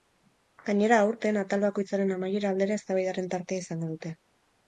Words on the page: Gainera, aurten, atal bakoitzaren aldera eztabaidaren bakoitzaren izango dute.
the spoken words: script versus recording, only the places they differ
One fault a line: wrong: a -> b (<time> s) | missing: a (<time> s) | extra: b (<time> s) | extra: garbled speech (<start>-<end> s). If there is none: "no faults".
extra: amaiera (2.1 s)
wrong: bakoitzaren -> tartea (3.4 s)